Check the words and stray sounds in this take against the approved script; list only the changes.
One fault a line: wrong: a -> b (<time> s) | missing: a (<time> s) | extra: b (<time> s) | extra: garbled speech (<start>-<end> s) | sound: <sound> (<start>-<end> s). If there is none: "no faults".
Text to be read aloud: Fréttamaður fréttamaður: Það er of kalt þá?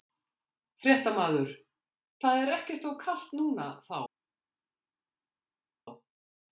missing: fréttamaður (1.5 s)
extra: ekkert (2.6 s)
extra: núna (3.4 s)